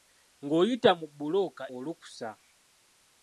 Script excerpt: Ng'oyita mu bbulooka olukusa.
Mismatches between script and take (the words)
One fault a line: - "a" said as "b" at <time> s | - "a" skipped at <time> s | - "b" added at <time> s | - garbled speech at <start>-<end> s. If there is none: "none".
none